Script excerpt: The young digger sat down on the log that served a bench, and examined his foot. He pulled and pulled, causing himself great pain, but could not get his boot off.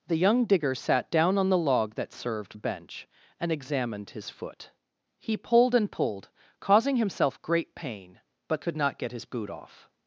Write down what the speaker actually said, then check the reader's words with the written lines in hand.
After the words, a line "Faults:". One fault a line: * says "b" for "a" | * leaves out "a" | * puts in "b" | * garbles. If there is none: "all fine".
The young digger sat down on the log that served a bench, and examined his foot. He pulled and pulled, causing himself great pain, but could not get his boot off.
Faults:
all fine